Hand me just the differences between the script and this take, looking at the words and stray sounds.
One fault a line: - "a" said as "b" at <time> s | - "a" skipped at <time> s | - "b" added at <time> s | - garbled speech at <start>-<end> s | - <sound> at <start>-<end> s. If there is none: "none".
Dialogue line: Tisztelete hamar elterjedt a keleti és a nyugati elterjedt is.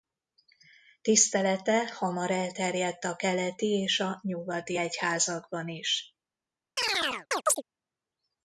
- "elterjedt" said as "egyházakban" at 4.7 s
- chirp at 6.8-7.6 s